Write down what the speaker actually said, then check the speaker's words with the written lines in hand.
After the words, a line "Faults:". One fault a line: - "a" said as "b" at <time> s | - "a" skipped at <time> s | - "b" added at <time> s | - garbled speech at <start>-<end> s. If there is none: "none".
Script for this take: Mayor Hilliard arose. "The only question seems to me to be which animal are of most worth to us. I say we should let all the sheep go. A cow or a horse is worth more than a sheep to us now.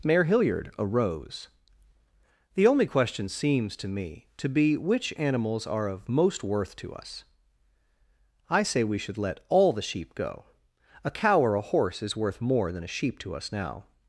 Mayor Hilliard arose. "The only question seems to me to be which animals are of most worth to us. I say we should let all the sheep go. A cow or a horse is worth more than a sheep to us now.
Faults:
- "animal" said as "animals" at 5.2 s